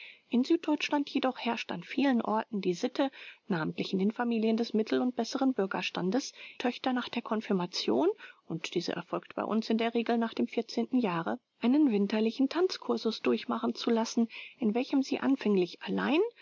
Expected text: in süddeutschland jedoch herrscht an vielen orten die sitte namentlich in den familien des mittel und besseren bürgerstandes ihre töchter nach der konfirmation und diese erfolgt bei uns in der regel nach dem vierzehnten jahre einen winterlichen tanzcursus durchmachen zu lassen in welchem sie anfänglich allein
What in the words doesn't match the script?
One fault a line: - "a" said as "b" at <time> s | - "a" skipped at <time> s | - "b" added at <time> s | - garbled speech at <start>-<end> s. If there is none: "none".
- "ihre" skipped at 6.3 s